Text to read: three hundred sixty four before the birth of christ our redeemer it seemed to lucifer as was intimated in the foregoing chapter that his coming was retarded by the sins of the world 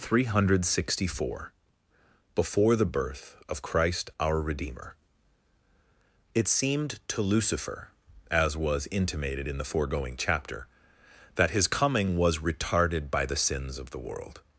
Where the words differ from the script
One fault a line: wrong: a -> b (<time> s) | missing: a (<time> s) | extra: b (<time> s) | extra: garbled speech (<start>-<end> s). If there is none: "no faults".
no faults